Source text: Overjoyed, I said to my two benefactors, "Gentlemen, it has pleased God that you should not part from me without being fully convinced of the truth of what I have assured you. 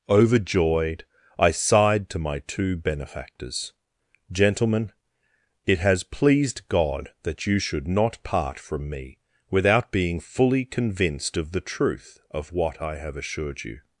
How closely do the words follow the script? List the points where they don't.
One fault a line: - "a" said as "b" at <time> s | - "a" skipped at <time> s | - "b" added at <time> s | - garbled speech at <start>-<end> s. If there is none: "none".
- "said" said as "sighed" at 1.5 s